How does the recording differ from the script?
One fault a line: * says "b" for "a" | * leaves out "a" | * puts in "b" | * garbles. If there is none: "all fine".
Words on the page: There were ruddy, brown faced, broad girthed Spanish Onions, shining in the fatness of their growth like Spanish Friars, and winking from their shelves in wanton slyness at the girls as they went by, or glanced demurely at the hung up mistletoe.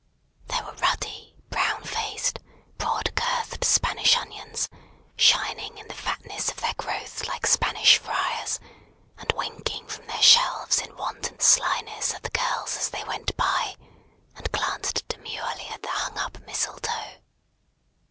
* says "and" for "or"